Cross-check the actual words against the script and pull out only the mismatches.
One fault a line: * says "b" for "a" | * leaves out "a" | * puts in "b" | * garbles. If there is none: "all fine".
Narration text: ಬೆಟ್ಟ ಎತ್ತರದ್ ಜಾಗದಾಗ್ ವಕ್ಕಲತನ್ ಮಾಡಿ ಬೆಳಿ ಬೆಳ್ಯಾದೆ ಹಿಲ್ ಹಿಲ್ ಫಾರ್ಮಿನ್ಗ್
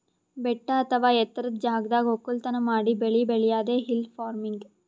* puts in "ಅಥವಾ"
* leaves out "ಹಿಲ್"